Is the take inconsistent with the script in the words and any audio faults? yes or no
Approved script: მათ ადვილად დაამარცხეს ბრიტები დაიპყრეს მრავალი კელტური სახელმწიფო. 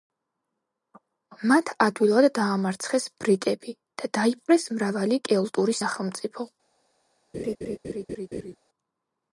yes